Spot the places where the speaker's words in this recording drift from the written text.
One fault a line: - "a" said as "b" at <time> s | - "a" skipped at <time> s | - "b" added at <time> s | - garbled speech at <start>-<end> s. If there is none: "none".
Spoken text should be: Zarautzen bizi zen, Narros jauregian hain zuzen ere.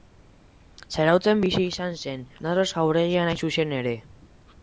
- "izan" added at 1.7 s